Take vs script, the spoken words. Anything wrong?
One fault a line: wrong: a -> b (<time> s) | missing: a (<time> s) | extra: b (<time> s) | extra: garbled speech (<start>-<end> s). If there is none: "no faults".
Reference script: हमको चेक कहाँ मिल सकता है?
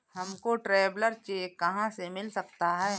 extra: ट्रैवलर (0.6 s)
extra: से (1.9 s)